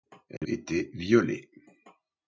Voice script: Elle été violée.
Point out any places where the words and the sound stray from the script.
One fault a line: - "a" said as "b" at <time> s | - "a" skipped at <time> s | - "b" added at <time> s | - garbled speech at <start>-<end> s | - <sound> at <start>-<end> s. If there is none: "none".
- dropout at 0.4-0.4 s